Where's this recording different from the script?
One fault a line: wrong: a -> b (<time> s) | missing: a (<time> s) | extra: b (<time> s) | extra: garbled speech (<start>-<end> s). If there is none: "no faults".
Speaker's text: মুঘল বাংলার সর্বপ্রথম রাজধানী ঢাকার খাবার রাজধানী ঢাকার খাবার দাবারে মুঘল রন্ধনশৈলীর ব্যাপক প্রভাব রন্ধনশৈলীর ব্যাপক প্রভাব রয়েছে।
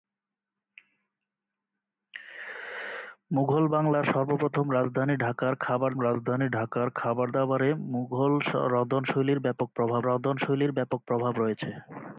no faults